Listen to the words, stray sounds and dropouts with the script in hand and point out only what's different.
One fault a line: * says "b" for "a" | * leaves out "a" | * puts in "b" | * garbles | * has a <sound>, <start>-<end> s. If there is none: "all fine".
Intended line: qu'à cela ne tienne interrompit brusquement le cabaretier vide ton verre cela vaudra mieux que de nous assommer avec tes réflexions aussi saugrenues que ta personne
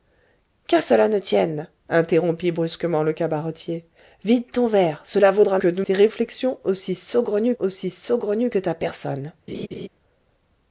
* leaves out "mieux"
* says "tes réflexions aussi saugrenues" for "nous assommer avec tes réflexions"
* has a laugh, 9.5-9.9 s